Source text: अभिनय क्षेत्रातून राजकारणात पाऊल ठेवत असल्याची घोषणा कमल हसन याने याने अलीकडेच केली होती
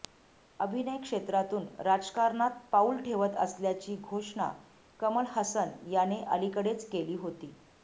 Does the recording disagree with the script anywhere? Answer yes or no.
yes